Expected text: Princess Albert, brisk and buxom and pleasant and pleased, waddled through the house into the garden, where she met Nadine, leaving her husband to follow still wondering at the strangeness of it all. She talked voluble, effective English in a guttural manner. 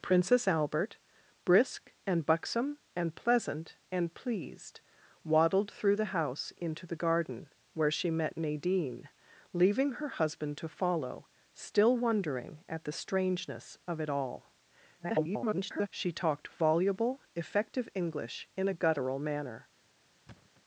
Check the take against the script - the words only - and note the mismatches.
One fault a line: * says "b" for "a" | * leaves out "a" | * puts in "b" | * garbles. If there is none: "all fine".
* garbles